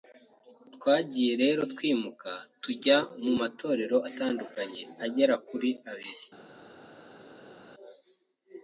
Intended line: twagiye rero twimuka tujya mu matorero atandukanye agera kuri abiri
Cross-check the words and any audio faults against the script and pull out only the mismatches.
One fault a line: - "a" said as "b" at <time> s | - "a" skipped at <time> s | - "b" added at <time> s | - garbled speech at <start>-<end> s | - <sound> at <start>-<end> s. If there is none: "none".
none